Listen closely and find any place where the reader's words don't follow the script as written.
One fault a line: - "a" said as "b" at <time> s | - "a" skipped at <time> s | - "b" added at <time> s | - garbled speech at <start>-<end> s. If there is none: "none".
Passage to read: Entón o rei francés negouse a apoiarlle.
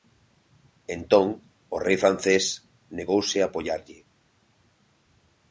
none